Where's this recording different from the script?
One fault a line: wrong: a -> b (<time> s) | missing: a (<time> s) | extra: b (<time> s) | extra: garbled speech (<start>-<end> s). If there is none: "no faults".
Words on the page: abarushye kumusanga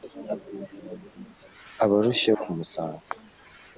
no faults